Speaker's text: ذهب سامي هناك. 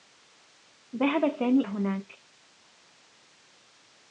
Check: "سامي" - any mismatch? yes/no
no